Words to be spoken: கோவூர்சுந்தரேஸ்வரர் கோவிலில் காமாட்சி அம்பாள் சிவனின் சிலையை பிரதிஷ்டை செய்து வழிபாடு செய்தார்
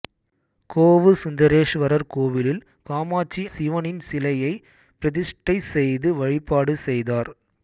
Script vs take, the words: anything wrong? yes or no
yes